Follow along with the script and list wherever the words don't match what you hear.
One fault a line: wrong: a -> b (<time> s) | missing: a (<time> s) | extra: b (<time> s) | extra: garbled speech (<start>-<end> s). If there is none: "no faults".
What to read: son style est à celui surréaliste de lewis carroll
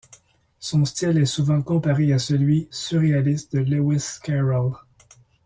extra: souvent comparé (1.3 s)